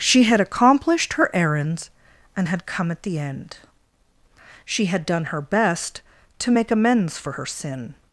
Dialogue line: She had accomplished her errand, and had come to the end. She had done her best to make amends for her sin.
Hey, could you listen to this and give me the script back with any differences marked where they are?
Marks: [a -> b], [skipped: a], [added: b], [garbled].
She had accomplished her [errand, -> errands] and had come [to -> at] the end. She had done her best to make amends for her sin.